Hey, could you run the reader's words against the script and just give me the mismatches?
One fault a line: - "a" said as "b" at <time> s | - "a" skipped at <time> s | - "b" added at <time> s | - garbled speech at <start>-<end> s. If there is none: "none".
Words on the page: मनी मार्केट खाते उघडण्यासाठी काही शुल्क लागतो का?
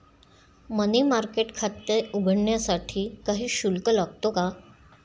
none